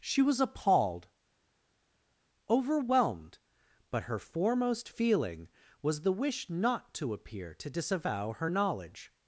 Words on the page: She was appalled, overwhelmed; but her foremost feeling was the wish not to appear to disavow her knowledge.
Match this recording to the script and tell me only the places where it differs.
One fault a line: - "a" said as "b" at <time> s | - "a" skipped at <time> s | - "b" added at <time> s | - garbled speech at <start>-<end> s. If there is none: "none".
none